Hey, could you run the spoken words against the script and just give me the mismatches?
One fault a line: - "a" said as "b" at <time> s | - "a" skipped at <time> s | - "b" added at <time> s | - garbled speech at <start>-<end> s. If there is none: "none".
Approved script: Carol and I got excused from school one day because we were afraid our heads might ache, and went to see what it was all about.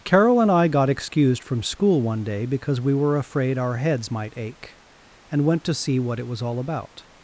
none